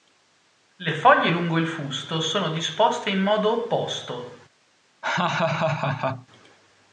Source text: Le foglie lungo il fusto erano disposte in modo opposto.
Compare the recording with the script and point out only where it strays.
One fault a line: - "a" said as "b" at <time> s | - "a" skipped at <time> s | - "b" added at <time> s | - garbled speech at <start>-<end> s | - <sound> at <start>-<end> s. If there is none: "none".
- "erano" said as "sono" at 2.2 s
- laugh at 5.0-6.3 s